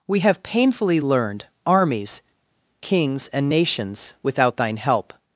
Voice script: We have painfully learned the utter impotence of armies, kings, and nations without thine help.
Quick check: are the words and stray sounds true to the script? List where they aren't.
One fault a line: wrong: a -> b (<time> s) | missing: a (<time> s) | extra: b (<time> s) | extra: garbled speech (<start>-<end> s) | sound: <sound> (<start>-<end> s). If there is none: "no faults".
missing: the utter impotence of (1.4 s)